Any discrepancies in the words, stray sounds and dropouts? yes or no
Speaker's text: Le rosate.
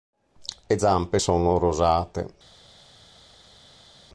yes